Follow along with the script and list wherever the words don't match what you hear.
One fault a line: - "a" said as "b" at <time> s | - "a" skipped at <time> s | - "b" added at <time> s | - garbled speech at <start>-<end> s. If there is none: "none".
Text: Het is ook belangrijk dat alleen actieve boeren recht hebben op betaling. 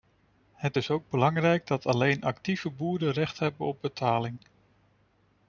none